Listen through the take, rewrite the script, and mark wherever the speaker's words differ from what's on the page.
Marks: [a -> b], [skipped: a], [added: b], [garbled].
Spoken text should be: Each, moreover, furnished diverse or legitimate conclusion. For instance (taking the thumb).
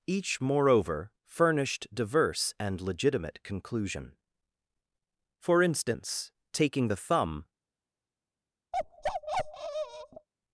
Each, moreover, furnished diverse [or -> and] legitimate conclusion. For instance (taking the thumb).